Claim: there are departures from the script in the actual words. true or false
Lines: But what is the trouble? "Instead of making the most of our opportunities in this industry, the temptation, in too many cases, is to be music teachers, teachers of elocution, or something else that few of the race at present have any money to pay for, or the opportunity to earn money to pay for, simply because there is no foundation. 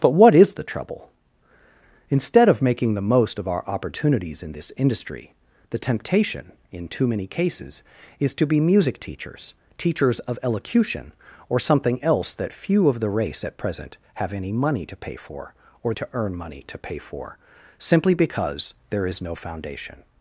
true